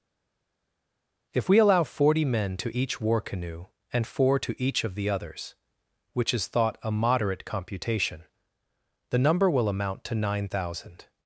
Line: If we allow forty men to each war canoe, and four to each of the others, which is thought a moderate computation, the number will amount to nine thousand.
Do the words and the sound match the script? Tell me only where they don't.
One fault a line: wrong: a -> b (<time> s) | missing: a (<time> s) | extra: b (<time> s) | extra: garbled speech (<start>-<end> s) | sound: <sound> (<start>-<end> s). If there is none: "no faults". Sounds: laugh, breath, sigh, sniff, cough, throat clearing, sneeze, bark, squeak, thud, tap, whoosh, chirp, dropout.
no faults